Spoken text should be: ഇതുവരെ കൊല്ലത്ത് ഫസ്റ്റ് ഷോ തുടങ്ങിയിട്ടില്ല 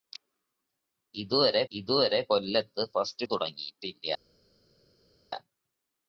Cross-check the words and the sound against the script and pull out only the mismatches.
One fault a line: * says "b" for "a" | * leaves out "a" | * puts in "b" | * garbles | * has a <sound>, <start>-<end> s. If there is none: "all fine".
* puts in "ഇതുവരെ"
* leaves out "ഷോ"